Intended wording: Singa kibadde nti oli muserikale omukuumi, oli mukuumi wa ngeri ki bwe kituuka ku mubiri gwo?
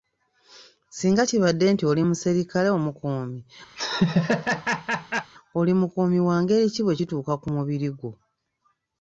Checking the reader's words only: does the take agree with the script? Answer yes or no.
yes